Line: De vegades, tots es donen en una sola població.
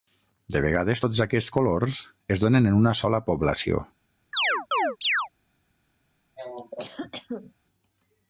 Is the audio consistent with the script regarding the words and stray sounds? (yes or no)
no